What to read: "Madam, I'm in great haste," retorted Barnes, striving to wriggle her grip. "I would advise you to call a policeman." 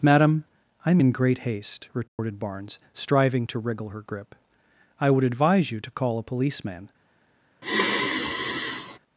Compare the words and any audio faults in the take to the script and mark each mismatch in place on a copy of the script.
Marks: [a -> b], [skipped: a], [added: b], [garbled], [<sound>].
"Madam, I'm in great haste," retorted [dropout] Barnes, striving to wriggle her grip. "I would advise you to call a policeman." [sigh]